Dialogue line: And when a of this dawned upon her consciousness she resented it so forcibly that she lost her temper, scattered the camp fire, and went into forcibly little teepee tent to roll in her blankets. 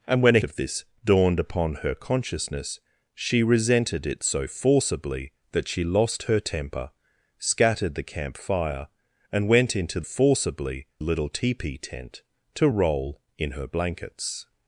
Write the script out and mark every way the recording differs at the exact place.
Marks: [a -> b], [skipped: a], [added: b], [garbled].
And when a of this dawned upon her consciousness she resented it so forcibly that she lost her temper, scattered the camp fire, and went into forcibly little teepee tent to roll in her blankets.